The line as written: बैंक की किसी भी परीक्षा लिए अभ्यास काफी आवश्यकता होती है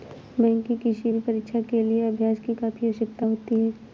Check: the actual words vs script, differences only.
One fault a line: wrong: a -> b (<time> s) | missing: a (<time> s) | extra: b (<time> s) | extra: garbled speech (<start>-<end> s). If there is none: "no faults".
extra: के (1.6 s)
extra: की (2.4 s)